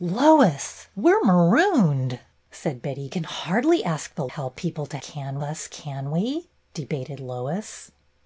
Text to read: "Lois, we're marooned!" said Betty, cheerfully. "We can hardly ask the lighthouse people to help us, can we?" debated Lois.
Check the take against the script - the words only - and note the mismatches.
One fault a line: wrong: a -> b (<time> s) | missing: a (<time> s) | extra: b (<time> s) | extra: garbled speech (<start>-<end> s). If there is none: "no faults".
missing: cheerfully We (3.1 s)
wrong: lighthouse -> help (4.3 s)
wrong: help -> can (5.0 s)